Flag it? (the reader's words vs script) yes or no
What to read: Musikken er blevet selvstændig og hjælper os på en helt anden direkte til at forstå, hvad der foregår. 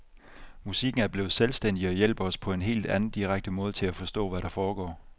yes